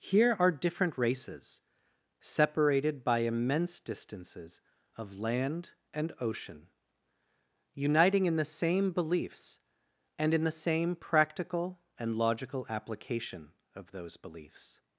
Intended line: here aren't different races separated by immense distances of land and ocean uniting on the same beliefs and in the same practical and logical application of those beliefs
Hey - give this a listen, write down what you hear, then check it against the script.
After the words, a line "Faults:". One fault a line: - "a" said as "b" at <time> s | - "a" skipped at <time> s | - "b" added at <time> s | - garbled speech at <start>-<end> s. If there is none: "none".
here are different races separated by immense distances of land and ocean uniting in the same beliefs and in the same practical and logical application of those beliefs
Faults:
- "aren't" said as "are" at 0.4 s
- "on" said as "in" at 8.2 s